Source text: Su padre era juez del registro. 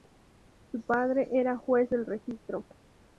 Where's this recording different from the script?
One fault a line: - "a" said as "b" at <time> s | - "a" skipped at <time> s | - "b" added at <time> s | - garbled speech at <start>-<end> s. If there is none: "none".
none